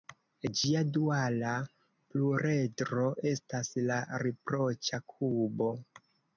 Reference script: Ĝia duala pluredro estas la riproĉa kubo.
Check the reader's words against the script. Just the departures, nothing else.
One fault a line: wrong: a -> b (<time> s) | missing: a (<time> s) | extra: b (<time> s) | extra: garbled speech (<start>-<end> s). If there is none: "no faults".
no faults